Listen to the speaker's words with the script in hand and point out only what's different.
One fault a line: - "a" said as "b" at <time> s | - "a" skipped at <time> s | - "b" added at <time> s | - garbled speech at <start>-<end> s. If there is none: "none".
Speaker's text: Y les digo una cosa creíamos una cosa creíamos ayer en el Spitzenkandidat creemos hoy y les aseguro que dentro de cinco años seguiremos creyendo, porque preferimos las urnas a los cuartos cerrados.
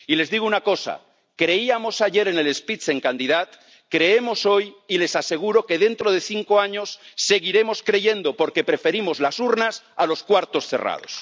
- "una cosa creíamos" skipped at 2.0 s